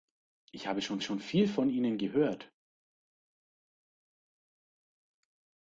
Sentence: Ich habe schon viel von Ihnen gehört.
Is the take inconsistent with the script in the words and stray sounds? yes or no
yes